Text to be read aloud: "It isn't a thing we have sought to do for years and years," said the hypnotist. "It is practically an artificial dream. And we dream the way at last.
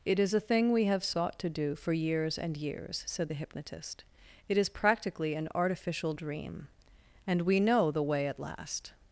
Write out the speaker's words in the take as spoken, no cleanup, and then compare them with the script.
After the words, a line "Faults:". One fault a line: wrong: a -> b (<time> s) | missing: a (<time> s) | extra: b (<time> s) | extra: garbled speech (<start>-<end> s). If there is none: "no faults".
"It is a thing we have sought to do for years and years," said the hypnotist. "It is practically an artificial dream. And we know the way at last.
Faults:
wrong: isn't -> is (0.2 s)
wrong: dream -> know (7.6 s)